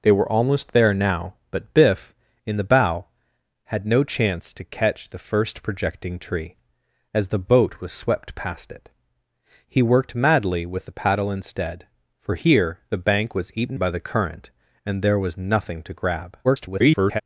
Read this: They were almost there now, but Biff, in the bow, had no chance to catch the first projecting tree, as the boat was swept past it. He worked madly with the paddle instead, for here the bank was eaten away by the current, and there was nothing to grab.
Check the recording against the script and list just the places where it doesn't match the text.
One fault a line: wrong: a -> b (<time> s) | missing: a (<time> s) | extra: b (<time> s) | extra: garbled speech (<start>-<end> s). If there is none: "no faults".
missing: away (13.8 s)
extra: garbled speech (16.4-17.2 s)